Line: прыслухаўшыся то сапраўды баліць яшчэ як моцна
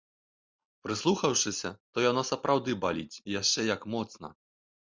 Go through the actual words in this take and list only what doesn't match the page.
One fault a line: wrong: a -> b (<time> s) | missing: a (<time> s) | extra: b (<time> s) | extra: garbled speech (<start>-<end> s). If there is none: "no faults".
extra: яно (2.1 s)
extra: і (3.3 s)